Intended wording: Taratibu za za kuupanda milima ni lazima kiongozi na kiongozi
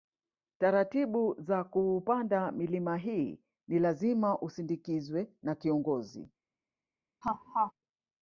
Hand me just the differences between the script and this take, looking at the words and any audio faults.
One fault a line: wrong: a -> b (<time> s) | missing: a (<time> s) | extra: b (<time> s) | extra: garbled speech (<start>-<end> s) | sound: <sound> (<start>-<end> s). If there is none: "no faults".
missing: za (1.6 s)
extra: hii (3.0 s)
wrong: kiongozi -> usindikizwe (4.4 s)
sound: laugh (7.2-7.7 s)